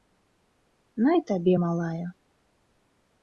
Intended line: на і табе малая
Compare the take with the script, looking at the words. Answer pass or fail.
pass